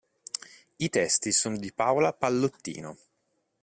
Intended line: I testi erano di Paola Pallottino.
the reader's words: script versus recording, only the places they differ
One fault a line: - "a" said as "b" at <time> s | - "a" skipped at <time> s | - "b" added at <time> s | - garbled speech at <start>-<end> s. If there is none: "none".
- "erano" said as "sono" at 1.3 s